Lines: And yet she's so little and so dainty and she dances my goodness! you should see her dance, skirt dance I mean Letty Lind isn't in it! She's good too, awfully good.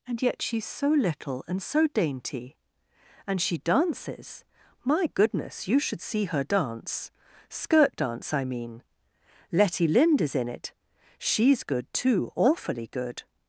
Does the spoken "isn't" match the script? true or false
false